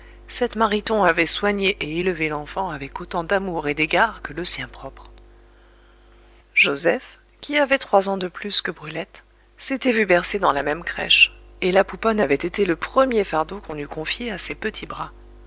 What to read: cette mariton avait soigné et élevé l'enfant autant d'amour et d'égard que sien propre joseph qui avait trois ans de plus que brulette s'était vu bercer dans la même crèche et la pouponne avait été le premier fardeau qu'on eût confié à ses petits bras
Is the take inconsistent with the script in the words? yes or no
yes